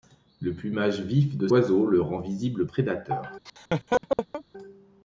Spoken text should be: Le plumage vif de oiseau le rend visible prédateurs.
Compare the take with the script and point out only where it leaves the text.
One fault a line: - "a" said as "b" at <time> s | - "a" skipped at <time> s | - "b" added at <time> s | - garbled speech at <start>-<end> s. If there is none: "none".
none